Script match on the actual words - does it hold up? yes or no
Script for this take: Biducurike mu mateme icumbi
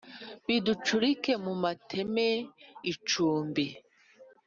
yes